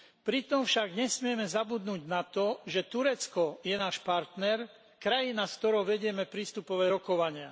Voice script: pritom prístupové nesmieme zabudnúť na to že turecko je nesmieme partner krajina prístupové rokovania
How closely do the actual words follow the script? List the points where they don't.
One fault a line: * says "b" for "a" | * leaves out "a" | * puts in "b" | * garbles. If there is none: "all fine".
* says "však" for "prístupové"
* says "náš" for "nesmieme"
* puts in "s ktorou vedieme"